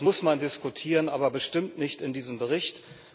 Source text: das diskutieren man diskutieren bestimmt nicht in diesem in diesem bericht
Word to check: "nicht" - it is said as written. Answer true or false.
true